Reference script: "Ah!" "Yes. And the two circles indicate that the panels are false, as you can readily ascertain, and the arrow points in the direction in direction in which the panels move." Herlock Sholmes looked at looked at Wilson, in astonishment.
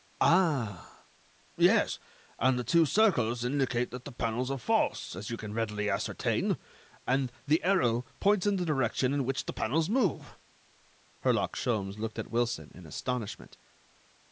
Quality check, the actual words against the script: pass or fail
fail